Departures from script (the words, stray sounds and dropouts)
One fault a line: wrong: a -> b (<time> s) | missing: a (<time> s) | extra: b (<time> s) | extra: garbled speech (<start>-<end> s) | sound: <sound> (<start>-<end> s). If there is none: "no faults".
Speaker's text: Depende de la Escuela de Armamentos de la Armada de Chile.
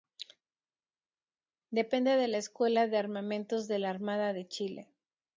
no faults